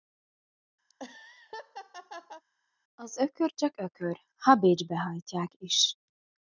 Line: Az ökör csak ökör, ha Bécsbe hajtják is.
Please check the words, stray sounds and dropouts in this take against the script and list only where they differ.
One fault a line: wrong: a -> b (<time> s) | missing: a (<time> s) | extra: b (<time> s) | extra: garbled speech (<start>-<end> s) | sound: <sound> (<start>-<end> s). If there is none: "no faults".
sound: laugh (0.9-2.4 s)